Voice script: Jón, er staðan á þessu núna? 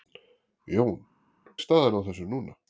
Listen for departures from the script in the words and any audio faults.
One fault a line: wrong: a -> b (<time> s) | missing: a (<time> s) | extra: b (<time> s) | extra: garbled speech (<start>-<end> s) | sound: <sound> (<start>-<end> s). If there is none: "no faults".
no faults